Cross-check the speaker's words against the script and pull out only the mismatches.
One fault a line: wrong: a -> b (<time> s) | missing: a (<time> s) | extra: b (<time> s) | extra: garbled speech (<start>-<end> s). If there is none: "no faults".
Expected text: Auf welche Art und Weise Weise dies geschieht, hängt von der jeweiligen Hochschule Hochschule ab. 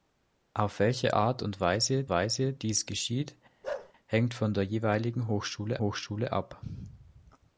no faults